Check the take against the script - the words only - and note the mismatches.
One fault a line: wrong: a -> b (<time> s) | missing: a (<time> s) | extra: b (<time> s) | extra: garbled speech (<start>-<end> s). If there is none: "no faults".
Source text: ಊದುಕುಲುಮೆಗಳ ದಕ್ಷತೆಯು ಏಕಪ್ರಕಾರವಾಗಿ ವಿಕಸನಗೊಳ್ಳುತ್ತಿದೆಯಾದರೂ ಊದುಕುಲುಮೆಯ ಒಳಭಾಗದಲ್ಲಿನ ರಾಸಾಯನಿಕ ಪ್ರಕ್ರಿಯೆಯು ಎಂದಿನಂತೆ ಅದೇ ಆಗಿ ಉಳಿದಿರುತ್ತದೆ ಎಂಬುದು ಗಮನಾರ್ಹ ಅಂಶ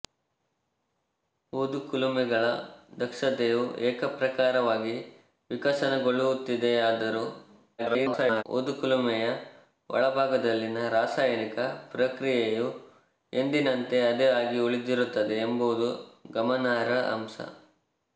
extra: garbled speech (7.8-8.4 s)